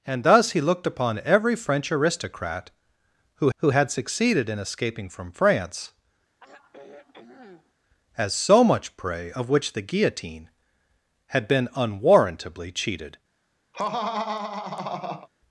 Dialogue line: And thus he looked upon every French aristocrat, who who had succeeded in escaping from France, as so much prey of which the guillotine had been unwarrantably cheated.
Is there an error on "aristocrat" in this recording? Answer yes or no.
no